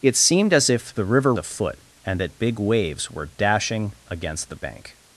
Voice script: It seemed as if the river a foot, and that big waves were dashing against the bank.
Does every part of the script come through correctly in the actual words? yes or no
yes